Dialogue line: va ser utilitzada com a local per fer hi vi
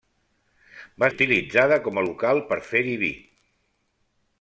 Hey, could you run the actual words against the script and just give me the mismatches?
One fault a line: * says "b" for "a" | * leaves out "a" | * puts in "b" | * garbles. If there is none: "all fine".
* leaves out "ser"